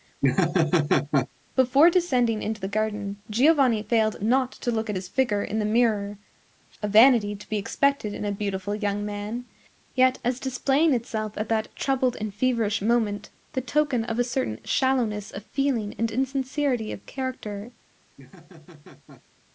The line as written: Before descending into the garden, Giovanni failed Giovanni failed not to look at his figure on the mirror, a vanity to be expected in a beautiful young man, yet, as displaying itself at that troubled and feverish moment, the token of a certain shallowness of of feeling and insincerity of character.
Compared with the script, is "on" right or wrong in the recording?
wrong